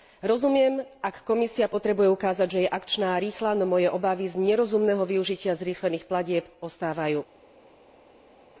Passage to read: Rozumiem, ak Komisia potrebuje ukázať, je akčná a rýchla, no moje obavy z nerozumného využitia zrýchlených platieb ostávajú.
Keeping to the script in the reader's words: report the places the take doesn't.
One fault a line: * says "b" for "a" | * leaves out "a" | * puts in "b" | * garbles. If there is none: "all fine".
* puts in "že"